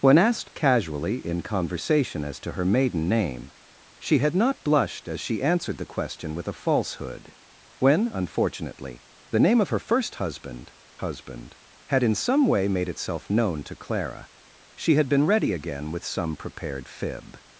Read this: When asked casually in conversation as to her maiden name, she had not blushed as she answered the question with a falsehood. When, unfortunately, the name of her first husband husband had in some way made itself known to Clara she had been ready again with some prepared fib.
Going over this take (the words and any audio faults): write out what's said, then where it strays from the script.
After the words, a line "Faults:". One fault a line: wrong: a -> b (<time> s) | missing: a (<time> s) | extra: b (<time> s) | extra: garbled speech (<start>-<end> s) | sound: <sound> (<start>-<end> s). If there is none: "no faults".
When asked casually in conversation as to her maiden name, she had not blushed as she answered the question with a falsehood. When, unfortunately, the name of her first husband husband had in some way made itself known to Clara she had been ready again with some prepared fib.
Faults:
no faults